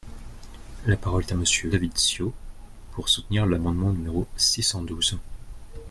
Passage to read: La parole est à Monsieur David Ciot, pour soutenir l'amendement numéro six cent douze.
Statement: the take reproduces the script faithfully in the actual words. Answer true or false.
true